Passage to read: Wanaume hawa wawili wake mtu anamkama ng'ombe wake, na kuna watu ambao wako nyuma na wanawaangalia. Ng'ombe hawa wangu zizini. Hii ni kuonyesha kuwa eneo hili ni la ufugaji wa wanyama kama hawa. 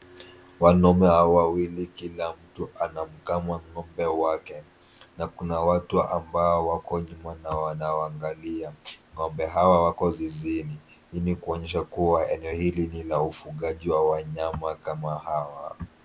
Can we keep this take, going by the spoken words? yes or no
no